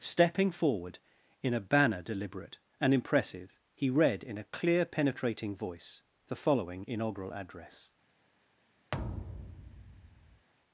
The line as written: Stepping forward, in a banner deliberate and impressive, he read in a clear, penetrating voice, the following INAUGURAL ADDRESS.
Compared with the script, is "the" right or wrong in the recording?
right